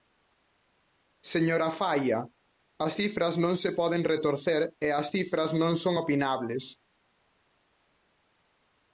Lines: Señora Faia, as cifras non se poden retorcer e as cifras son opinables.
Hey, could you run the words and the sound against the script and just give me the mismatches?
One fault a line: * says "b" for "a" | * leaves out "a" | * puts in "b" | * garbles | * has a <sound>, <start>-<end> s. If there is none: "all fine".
* puts in "non"